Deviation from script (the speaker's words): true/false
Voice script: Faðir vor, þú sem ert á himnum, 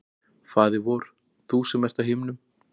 false